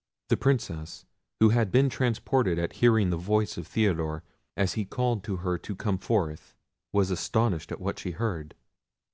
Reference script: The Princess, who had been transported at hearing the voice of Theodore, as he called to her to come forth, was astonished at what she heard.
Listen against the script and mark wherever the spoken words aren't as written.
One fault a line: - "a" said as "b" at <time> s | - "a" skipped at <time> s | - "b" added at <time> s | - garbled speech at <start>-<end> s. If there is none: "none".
none